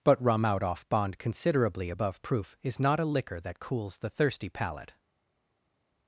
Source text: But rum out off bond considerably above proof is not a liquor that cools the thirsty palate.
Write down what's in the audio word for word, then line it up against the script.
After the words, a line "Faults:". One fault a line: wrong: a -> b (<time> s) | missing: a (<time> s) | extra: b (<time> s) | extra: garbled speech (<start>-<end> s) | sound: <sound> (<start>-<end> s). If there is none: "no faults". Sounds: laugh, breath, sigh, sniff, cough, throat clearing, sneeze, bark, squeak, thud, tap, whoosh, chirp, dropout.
But rum out off bond considerably above proof is not a liquor that cools the thirsty palate.
Faults:
no faults